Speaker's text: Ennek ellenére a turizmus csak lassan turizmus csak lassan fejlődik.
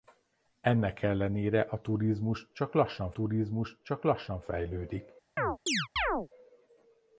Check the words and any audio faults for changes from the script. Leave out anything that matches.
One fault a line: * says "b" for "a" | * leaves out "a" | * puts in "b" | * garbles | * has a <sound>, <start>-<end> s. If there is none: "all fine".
* has a chirp, 5.4-6.3 s